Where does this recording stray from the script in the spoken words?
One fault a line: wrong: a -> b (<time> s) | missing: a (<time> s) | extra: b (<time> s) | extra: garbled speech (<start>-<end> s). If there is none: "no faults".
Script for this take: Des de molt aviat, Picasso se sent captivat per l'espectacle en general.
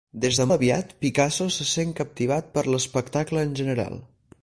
missing: molt (0.4 s)